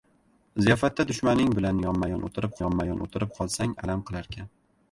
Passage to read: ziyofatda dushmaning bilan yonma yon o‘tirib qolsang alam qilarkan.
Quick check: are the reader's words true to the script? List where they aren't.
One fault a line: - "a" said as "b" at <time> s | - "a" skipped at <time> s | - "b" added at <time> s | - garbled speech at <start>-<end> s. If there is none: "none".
- "yonma yon o‘tirib" added at 2.6 s